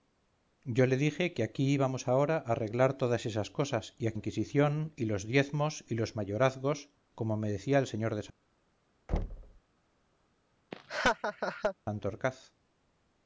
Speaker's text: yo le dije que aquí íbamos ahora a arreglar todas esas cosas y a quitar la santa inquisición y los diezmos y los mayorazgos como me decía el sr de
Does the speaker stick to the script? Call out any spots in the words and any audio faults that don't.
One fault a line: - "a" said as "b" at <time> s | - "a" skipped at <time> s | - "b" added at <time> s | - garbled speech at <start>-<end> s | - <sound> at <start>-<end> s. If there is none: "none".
- "quitar la santa" skipped at 4.2 s
- thud at 9.1-9.6 s
- laugh at 10.7-11.8 s